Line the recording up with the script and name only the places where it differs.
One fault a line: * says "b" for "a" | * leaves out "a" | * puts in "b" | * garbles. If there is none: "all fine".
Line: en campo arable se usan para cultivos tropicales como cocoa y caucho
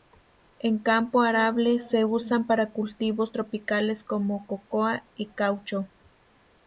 all fine